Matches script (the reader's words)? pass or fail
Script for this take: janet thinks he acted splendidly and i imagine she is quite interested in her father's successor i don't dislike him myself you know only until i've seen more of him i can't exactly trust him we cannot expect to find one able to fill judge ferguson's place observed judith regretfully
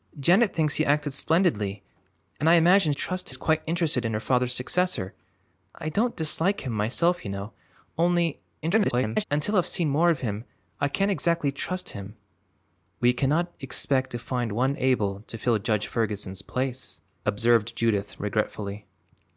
fail